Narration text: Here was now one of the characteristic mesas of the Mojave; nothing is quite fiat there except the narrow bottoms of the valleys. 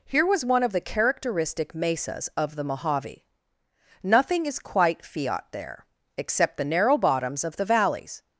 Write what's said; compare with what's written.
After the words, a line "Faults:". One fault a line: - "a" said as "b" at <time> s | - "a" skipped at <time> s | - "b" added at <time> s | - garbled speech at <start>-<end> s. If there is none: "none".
Here was one of the characteristic mesas of the Mojave; nothing is quite fiat there except the narrow bottoms of the valleys.
Faults:
- "now" skipped at 0.4 s